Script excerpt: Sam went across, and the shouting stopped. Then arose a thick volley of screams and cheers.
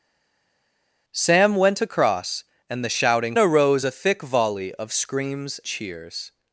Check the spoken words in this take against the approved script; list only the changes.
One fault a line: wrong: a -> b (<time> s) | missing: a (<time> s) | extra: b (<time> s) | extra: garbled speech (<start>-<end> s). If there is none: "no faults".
missing: stopped Then (3.4 s)
missing: and (5.6 s)